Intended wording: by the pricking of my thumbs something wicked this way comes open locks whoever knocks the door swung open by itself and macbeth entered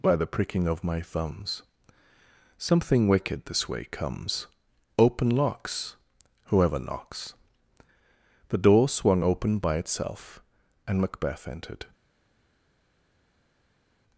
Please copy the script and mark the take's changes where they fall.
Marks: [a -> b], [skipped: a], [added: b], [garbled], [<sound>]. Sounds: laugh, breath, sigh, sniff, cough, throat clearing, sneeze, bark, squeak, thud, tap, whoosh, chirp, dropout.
by the pricking of my thumbs something wicked this way comes open locks whoever knocks the door swung open by itself and macbeth entered